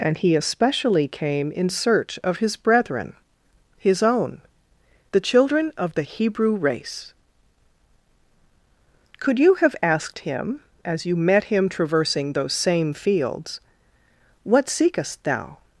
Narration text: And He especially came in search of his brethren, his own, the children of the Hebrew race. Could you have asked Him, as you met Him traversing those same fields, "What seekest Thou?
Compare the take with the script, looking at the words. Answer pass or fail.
pass